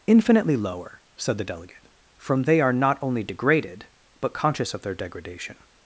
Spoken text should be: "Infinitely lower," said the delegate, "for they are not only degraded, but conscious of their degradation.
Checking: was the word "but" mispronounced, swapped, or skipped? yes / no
no